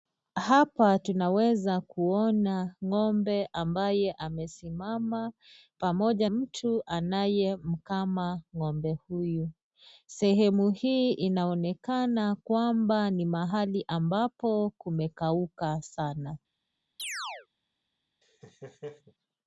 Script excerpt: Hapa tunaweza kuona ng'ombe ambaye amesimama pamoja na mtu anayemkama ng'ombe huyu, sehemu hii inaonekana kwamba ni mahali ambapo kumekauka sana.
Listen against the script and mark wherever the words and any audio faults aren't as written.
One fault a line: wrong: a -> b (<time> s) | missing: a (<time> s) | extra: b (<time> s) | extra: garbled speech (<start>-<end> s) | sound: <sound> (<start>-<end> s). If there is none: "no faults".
missing: na (6.3 s)
sound: chirp (17.0-17.5 s)
sound: laugh (18.2-19.1 s)